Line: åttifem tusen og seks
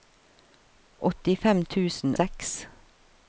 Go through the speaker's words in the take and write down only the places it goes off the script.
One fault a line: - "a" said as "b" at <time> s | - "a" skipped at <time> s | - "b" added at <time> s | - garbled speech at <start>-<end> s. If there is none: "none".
- "og" skipped at 2.1 s